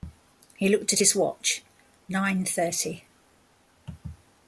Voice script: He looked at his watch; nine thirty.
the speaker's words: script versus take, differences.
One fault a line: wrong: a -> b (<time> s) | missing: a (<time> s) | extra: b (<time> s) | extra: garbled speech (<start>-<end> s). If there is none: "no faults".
no faults